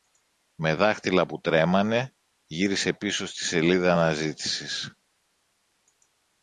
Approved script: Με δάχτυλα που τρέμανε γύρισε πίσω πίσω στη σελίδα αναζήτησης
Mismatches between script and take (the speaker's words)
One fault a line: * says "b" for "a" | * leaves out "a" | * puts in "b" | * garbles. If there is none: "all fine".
* leaves out "πίσω"